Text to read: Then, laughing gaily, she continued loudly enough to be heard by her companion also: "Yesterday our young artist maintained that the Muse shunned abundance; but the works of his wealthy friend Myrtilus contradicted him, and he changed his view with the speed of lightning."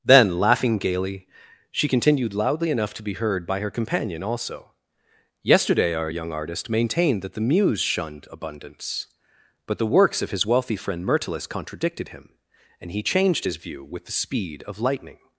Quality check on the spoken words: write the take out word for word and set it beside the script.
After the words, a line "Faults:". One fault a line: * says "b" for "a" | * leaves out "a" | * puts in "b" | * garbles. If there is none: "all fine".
Then, laughing gaily, she continued loudly enough to be heard by her companion also: "Yesterday our young artist maintained that the Muse shunned abundance; but the works of his wealthy friend Myrtilus contradicted him, and he changed his view with the speed of lightning."
Faults:
all fine